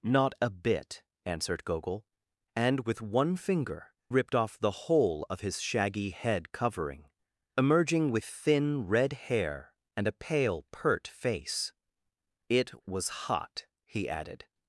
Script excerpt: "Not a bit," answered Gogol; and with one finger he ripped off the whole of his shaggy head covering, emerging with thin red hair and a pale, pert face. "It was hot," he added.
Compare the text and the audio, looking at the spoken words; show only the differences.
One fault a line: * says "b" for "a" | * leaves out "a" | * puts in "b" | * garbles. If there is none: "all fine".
* leaves out "he"